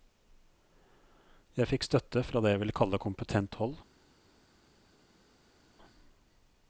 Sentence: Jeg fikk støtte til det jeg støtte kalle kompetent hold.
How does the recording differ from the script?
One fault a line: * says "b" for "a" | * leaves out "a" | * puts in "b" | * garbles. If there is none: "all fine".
* says "fra" for "til"
* says "vil" for "støtte"